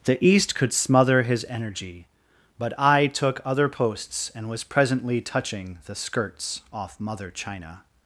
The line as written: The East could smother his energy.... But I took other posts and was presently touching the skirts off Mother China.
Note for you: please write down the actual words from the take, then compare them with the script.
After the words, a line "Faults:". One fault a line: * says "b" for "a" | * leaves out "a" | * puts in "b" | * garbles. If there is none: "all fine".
The East could smother his energy.... But I took other posts and was presently touching the skirts off Mother China.
Faults:
all fine